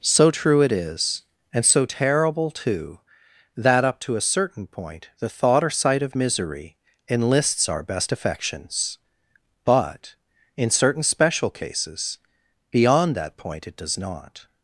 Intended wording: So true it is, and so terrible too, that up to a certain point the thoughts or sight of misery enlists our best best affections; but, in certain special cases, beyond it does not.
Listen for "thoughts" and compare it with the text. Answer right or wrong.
wrong